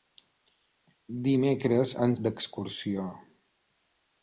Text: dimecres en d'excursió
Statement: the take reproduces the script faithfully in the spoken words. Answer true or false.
true